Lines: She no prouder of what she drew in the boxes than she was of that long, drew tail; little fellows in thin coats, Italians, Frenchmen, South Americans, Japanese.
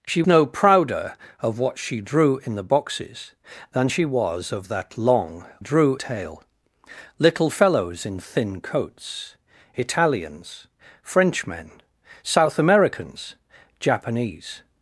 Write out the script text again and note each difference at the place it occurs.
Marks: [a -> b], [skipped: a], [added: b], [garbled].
She no prouder of what she drew in the boxes than she was of that long, drew tail; little fellows in thin coats, Italians, Frenchmen, South Americans, Japanese.